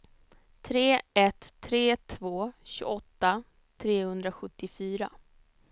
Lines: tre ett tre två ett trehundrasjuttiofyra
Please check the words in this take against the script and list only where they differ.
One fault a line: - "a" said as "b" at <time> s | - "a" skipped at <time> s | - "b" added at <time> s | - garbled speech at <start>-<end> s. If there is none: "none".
- "ett" said as "tjugoåtta" at 2.6 s